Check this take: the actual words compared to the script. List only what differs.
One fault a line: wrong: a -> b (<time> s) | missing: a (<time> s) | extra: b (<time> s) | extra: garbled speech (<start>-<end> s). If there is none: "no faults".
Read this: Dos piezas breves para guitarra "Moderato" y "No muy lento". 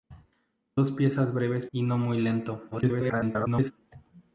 missing: para guitarra Moderato (1.7 s)
extra: garbled speech (2.7-3.7 s)